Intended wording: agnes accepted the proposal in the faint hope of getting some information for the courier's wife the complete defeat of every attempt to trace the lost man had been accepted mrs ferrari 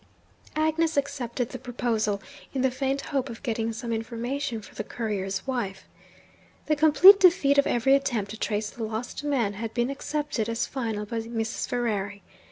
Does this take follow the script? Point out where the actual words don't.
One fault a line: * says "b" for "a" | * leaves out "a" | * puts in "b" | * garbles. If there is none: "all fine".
* puts in "as final by"